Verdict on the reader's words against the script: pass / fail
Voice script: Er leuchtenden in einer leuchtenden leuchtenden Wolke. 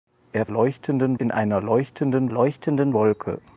pass